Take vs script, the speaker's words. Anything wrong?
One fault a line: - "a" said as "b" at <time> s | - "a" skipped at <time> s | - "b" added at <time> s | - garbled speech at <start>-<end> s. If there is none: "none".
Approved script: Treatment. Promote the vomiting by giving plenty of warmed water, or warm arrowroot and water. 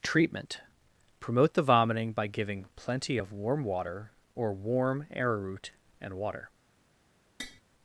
- "warmed" said as "warm" at 3.3 s